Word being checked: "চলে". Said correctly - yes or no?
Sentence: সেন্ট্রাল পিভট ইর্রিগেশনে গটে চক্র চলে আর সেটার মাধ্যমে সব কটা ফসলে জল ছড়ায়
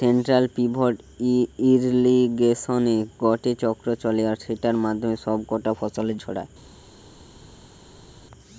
yes